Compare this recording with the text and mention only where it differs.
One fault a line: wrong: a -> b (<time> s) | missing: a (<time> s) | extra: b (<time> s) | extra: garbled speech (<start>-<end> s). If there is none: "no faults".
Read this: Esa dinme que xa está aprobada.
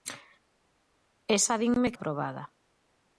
missing: que xa está (1.9 s)